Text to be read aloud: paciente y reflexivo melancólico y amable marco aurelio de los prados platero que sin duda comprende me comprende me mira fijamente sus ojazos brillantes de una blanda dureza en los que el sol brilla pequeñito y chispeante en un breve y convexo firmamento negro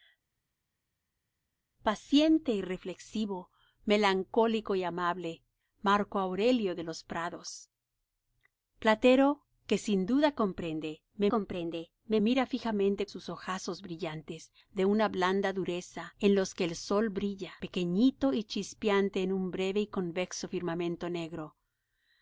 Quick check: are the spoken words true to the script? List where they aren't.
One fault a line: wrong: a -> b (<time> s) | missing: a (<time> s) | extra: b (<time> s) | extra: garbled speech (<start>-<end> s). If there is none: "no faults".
no faults